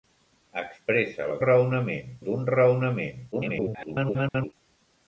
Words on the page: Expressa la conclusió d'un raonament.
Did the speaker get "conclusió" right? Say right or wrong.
wrong